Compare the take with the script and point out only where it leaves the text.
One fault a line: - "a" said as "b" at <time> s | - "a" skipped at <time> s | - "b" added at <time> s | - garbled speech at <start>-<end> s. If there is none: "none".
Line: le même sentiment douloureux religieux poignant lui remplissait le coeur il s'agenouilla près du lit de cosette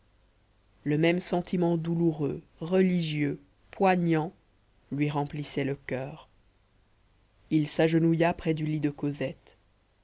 none